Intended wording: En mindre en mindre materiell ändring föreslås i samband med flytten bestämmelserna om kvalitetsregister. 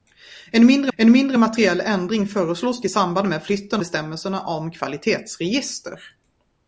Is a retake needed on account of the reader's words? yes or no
no